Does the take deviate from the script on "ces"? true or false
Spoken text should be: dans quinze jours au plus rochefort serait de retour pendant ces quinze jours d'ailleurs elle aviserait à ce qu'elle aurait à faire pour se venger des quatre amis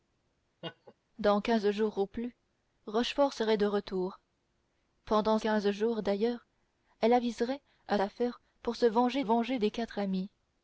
true